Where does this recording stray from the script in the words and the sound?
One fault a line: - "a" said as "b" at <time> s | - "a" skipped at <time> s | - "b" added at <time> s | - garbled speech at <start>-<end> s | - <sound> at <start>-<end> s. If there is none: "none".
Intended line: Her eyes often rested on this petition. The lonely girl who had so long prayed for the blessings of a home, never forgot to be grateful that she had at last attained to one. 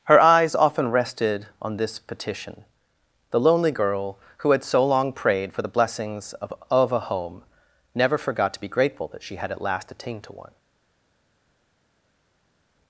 - "of" added at 6.7 s